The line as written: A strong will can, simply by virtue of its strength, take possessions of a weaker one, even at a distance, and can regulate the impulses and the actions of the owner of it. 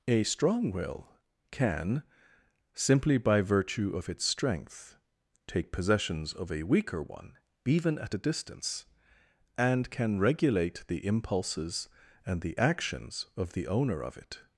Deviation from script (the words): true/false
false